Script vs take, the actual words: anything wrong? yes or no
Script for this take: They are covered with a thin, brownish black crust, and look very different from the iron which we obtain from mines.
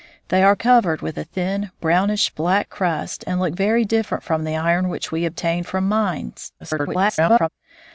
yes